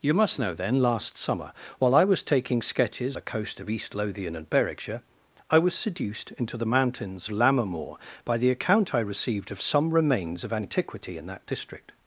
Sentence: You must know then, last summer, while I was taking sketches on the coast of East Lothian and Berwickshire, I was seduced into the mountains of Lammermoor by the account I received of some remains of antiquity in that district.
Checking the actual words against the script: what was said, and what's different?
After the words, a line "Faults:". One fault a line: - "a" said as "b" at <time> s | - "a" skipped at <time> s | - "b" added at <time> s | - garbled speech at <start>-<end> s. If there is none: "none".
You must know then, last summer, while I was taking sketches the coast of East Lothian and Berwickshire, I was seduced into the mountains Lammermoor by the account I received of some remains of antiquity in that district.
Faults:
- "on" skipped at 3.2 s
- "of" skipped at 7.3 s